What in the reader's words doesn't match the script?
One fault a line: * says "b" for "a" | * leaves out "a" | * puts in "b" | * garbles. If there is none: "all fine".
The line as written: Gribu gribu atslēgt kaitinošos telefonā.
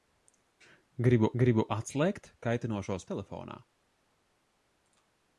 all fine